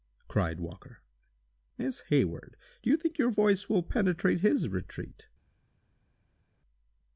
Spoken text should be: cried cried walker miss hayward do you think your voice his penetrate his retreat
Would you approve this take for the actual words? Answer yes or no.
no